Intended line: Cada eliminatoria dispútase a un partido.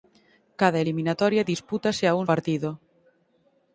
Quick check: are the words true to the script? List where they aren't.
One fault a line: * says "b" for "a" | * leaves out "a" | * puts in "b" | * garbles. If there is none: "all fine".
all fine